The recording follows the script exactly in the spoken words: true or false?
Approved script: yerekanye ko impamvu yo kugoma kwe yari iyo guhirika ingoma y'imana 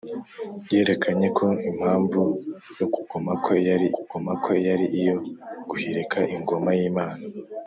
false